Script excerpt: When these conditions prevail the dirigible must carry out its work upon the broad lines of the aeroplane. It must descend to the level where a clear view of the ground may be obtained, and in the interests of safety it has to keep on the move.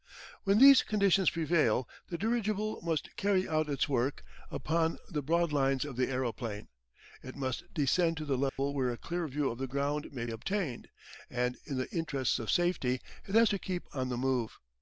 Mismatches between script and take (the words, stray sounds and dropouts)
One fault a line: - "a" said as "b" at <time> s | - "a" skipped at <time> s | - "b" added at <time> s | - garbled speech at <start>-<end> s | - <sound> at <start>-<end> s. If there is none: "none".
- dropout at 8.5-8.6 s
- "be" skipped at 10.2 s